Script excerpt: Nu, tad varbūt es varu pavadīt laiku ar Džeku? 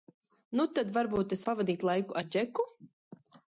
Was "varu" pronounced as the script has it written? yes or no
no